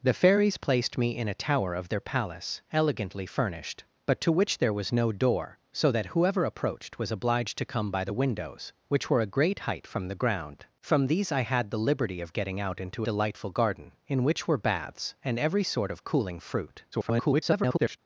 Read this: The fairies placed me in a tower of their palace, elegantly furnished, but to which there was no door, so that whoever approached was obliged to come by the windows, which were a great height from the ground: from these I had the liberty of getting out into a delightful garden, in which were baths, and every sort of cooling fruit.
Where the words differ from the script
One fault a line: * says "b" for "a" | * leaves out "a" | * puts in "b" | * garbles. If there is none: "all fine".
* leaves out "a"
* garbles